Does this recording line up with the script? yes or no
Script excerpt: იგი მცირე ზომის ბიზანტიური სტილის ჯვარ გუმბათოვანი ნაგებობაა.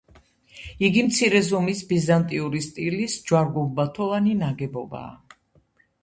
yes